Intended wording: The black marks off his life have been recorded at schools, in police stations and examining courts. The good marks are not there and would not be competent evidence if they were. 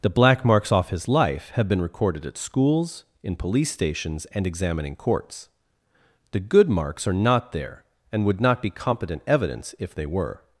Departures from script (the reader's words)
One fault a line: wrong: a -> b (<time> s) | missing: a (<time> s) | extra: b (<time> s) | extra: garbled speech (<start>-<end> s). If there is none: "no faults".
no faults